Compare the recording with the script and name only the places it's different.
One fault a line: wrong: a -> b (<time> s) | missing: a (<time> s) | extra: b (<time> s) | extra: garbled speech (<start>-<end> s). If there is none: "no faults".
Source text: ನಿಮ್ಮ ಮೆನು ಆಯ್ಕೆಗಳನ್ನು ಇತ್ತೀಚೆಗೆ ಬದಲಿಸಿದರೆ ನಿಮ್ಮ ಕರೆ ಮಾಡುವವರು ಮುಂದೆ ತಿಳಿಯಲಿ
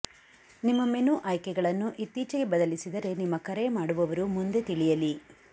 no faults